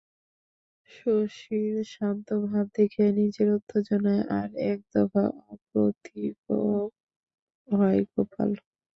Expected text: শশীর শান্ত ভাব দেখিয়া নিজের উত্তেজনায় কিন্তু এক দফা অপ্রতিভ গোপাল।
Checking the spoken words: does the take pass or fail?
fail